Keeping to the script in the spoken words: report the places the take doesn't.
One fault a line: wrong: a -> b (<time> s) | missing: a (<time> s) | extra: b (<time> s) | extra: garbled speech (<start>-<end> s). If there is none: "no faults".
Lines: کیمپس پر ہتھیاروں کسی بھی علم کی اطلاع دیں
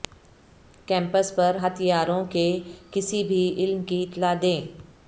extra: کے (2.3 s)